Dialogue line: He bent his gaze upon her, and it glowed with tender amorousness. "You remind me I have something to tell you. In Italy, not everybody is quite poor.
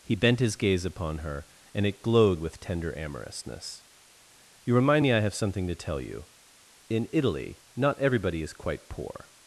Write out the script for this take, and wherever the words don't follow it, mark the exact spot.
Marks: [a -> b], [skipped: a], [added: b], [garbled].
He bent his gaze upon her, and it glowed with tender amorousness. "You remind me I have something to tell you. In Italy, not everybody is quite poor.